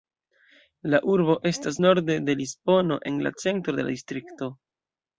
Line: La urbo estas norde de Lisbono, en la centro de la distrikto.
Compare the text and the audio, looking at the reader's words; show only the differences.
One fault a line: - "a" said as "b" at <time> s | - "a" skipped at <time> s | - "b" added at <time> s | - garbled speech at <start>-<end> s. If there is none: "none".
none